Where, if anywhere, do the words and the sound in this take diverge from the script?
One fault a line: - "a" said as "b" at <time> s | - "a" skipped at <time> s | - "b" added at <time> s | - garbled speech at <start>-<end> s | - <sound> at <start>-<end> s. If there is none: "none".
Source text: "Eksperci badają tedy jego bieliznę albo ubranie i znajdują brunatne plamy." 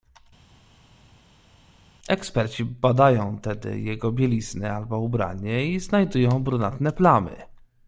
none